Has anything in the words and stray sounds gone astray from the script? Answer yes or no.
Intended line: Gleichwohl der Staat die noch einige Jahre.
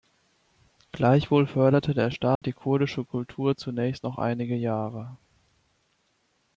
yes